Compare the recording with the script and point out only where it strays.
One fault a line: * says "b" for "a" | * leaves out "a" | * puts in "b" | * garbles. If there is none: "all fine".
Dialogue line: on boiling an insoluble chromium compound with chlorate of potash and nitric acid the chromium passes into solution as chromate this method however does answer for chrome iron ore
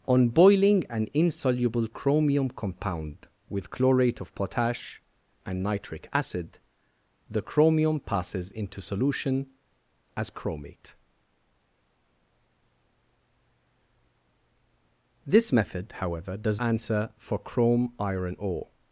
all fine